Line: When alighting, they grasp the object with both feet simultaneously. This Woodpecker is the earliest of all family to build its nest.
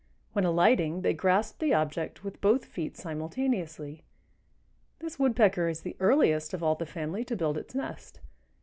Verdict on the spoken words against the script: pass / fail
fail